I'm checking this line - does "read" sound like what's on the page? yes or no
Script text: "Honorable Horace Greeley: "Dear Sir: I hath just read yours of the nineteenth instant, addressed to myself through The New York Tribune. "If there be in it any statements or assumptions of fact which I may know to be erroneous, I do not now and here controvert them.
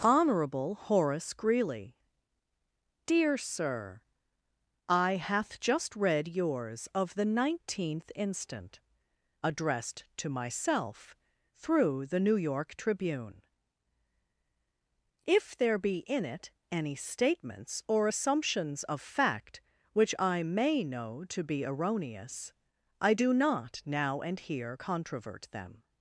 yes